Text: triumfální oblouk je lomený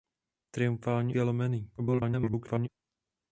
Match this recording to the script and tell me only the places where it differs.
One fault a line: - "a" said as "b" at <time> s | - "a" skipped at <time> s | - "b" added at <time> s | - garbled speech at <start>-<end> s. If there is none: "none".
- "oblouk" skipped at 1.1 s
- garbled speech at 1.8-2.7 s